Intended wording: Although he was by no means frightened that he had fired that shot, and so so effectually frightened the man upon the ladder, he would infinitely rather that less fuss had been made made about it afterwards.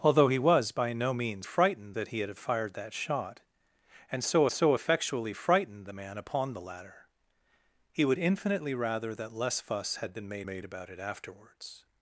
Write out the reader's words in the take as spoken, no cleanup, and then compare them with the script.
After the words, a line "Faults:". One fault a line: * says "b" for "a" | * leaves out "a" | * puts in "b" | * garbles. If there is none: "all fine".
Although he was by no means frightened that he had fired that shot, and so so effectually frightened the man upon the ladder, he would infinitely rather that less fuss had been made made about it afterwards.
Faults:
all fine